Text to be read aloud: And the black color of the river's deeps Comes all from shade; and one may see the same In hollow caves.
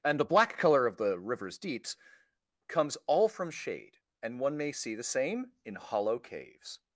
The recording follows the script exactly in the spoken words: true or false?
true